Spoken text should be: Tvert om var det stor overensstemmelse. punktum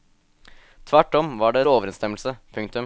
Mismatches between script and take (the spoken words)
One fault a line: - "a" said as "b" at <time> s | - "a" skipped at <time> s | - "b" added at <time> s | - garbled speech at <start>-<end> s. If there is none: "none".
- "stor" skipped at 1.7 s